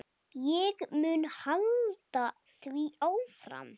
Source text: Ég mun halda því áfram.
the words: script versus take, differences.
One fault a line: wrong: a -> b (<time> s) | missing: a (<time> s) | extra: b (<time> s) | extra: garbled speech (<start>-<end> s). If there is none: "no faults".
no faults